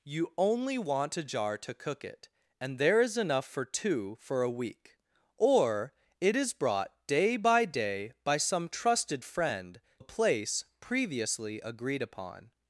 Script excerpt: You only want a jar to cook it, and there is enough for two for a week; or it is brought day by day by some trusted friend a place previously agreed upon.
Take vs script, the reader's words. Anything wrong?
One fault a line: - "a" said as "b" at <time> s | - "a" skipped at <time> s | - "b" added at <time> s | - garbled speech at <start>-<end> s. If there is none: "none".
none